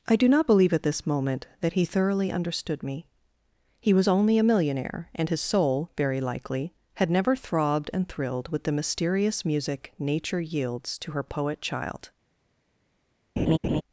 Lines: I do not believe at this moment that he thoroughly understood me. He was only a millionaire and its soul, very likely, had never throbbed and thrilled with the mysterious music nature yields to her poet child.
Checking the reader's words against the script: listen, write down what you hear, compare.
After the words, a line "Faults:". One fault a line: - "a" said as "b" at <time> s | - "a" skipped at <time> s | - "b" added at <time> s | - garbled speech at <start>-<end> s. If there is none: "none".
I do not believe at this moment that he thoroughly understood me. He was only a millionaire and his soul, very likely, had never throbbed and thrilled with the mysterious music nature yields to her poet child.
Faults:
- "its" said as "his" at 5.3 s